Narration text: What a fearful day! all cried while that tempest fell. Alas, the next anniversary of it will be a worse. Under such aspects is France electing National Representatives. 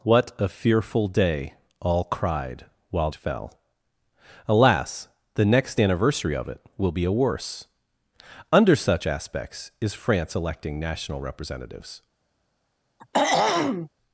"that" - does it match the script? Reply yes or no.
no